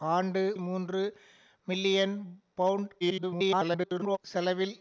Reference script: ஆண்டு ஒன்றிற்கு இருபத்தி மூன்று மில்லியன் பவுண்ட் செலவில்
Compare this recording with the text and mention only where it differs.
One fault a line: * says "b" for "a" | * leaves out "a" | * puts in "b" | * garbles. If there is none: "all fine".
* leaves out "ஒன்றிற்கு இருபத்தி"
* garbles